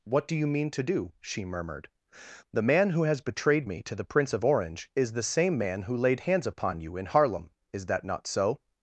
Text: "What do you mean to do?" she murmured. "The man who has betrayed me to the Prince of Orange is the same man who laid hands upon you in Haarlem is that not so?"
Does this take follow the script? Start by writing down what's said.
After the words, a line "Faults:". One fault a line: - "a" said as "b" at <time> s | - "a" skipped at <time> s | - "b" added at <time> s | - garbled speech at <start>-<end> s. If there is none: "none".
"What do you mean to do?" she murmured. "The man who has betrayed me to the Prince of Orange is the same man who laid hands upon you in Haarlem is that not so?"
Faults:
none